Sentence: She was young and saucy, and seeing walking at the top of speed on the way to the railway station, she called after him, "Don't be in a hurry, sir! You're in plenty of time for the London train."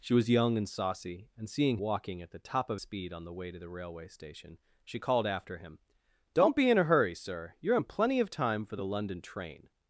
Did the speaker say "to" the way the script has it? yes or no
yes